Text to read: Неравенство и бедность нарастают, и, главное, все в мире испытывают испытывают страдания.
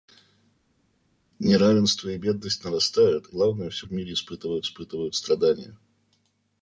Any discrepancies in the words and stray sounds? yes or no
no